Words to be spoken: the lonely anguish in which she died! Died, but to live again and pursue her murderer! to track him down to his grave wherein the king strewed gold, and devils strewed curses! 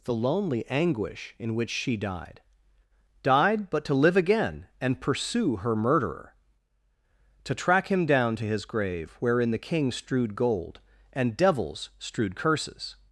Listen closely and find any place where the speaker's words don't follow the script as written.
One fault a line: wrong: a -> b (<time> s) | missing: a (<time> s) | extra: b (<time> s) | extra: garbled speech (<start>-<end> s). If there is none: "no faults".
no faults